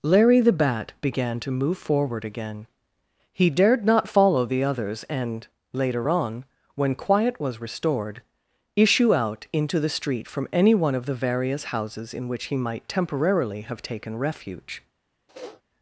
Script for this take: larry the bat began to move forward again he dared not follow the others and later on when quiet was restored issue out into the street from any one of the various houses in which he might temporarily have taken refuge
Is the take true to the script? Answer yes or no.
yes